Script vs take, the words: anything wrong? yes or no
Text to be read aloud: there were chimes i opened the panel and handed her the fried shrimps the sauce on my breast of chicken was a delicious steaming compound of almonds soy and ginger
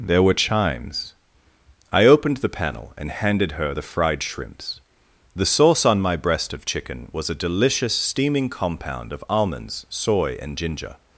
no